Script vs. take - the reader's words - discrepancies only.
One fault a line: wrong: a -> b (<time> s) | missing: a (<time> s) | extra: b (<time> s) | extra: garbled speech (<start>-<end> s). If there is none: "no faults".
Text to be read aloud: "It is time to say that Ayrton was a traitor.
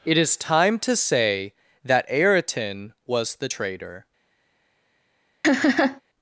wrong: a -> the (3.4 s)